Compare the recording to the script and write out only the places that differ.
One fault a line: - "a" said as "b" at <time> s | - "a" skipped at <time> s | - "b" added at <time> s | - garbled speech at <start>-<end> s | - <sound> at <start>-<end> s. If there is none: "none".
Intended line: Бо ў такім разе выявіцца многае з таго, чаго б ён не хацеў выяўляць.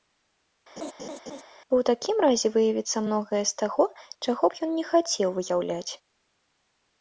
- laugh at 0.8-1.4 s